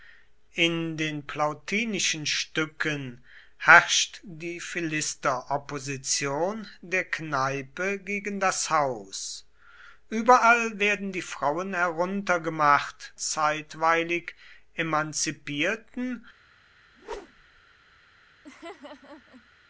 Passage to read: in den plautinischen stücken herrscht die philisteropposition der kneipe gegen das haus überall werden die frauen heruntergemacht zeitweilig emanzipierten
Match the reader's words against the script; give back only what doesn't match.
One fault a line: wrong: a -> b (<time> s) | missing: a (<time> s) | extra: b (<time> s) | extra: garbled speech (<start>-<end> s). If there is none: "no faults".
no faults